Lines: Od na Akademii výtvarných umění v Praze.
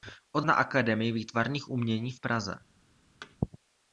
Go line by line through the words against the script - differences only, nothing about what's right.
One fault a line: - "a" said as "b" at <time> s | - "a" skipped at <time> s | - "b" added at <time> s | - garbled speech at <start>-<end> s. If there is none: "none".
none